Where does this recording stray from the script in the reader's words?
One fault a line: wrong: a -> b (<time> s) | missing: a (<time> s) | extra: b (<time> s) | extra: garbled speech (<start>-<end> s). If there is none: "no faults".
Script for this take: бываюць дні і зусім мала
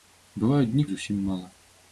no faults